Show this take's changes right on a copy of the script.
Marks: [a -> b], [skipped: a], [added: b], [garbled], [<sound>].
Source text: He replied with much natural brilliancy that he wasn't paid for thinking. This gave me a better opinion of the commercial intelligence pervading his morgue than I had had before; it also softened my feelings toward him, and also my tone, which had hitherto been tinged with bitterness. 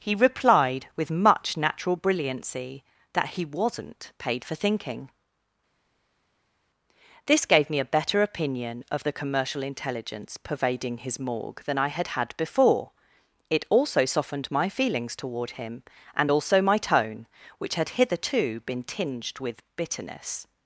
He replied with much natural brilliancy that he wasn't paid for thinking. This gave me a better opinion of the commercial intelligence pervading his morgue than I had had before; it also softened my feelings toward him, and also my tone, which had hitherto been tinged with bitterness.